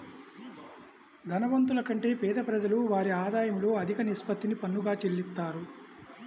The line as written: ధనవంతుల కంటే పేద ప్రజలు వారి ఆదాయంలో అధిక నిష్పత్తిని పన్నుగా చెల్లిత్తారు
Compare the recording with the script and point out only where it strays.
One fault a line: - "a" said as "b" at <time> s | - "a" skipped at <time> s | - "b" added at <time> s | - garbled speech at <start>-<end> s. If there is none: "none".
none